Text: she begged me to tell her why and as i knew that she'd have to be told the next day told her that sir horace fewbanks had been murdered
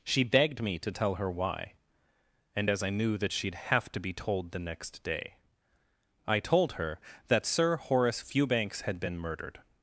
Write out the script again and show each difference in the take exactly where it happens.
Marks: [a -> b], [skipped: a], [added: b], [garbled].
she begged me to tell her why and as i knew that she'd have to be told the next day [added: i] told her that sir horace fewbanks had been murdered